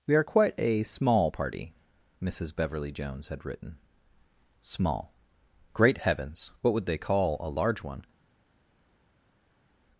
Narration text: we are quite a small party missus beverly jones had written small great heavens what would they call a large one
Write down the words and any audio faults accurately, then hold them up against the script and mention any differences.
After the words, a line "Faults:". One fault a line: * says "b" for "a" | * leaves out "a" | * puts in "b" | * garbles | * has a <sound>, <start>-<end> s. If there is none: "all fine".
we are quite a small party missus beverly jones had written small great heavens what would they call a large one
Faults:
all fine